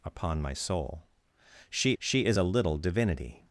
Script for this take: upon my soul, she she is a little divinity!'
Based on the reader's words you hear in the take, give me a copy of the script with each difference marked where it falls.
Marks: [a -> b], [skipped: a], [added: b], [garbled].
upon my soul, she she is a little divinity!'